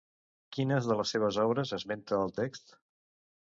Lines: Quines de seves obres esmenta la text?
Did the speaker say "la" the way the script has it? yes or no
no